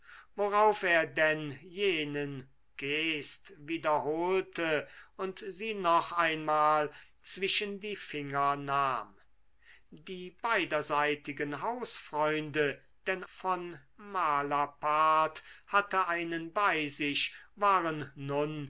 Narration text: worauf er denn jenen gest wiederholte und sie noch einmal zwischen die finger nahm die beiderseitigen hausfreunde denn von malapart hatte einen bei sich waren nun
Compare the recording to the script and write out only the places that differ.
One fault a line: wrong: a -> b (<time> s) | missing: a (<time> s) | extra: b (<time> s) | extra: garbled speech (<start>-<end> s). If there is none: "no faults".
no faults